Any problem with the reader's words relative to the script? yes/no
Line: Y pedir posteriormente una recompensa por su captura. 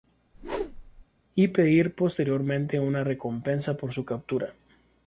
no